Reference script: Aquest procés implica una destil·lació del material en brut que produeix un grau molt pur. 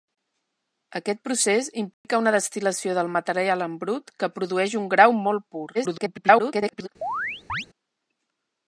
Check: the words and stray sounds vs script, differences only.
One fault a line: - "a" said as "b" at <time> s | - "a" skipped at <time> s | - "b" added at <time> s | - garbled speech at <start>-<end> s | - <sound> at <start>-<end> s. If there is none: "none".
- dropout at 1.9-2.0 s
- garbled speech at 5.7-6.9 s
- chirp at 7.0-7.7 s